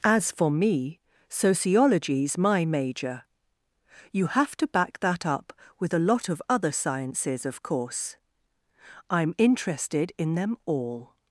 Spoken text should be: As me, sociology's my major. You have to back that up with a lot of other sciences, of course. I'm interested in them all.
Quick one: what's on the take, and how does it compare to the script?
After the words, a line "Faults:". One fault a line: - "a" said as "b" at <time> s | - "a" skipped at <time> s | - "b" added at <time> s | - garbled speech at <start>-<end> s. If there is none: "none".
As for me, sociology's my major. You have to back that up with a lot of other sciences, of course. I'm interested in them all.
Faults:
- "for" added at 0.3 s